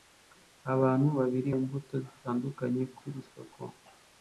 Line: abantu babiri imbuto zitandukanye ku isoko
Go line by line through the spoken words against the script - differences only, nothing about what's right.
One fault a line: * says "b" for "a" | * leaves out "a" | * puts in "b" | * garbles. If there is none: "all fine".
all fine